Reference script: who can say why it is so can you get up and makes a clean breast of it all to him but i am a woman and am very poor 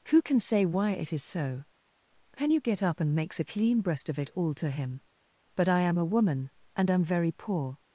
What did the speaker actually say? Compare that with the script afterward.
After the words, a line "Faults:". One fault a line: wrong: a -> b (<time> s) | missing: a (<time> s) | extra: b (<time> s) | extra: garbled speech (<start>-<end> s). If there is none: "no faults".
who can say why it is so can you get up and makes a clean breast of it all to him but i am a woman and am very poor
Faults:
no faults